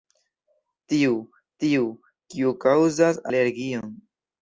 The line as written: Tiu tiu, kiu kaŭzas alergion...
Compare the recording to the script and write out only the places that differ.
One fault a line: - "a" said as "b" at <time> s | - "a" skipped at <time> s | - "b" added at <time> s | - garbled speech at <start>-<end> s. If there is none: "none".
none